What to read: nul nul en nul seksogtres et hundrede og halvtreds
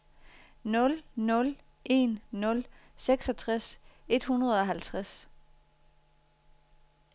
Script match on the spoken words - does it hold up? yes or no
yes